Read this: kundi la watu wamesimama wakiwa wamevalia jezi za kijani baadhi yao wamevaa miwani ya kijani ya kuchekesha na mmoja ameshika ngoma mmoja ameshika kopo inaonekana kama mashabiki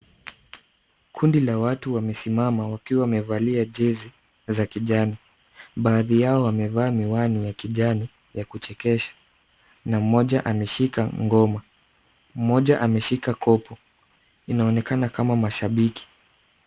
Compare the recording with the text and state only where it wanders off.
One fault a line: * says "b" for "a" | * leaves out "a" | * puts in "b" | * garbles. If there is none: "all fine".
all fine